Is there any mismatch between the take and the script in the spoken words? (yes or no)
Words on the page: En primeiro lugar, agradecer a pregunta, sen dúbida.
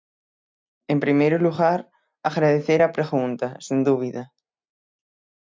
no